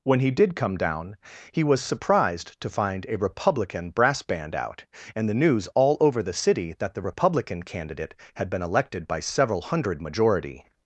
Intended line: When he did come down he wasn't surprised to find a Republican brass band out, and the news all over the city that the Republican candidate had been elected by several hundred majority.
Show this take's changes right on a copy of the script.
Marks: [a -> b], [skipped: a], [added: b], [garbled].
When he did come down he [wasn't -> was] surprised to find a Republican brass band out, and the news all over the city that the Republican candidate had been elected by several hundred majority.